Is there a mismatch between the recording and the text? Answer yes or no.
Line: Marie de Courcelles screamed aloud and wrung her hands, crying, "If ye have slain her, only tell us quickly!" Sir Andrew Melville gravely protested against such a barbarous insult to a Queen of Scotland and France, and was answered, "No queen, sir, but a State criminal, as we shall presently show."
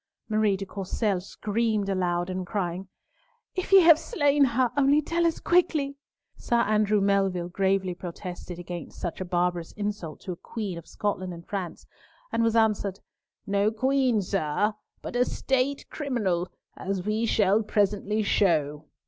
yes